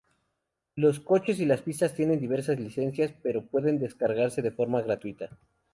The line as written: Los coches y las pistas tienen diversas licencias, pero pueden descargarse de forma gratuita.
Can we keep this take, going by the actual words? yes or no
yes